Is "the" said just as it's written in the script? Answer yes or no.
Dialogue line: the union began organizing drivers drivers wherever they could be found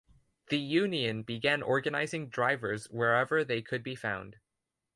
yes